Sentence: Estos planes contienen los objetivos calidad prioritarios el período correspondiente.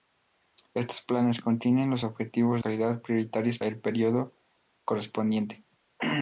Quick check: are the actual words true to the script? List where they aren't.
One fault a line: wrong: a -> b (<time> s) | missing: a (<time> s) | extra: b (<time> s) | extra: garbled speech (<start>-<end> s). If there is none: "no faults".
no faults